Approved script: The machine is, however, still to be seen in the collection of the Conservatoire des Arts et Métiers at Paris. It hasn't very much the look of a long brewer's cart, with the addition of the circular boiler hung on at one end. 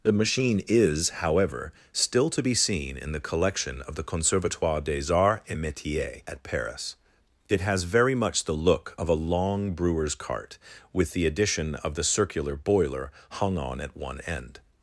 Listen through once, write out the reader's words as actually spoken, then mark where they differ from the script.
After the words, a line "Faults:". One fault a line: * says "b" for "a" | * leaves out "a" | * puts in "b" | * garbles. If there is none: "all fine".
The machine is, however, still to be seen in the collection of the Conservatoire des Arts et Métiers at Paris. It has very much the look of a long brewer's cart, with the addition of the circular boiler hung on at one end.
Faults:
* says "has" for "hasn't"